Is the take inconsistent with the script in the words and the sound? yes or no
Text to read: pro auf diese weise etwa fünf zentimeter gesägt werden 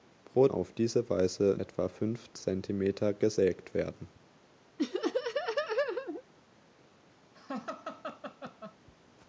yes